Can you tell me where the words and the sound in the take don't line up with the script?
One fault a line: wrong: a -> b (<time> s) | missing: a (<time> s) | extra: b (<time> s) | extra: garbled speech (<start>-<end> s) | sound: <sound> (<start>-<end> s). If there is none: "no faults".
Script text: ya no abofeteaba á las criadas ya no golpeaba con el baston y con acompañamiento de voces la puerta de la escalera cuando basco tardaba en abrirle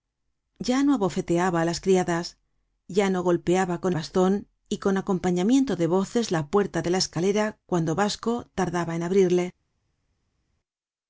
missing: el (3.9 s)